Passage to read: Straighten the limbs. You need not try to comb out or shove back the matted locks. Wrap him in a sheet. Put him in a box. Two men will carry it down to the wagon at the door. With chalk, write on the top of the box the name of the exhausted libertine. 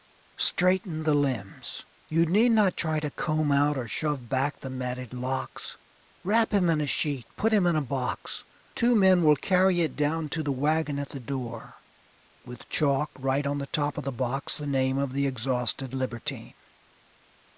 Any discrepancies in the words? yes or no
no